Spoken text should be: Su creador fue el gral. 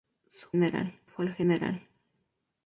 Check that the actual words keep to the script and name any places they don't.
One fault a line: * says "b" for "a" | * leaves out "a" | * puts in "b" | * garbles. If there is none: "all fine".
* says "gral" for "creador"